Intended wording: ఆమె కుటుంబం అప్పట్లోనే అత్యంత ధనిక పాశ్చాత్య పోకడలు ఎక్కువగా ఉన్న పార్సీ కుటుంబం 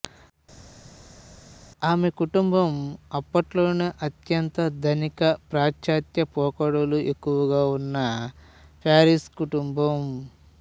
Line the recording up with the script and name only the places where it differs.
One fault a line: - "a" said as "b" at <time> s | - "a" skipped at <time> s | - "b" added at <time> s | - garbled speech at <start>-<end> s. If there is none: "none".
none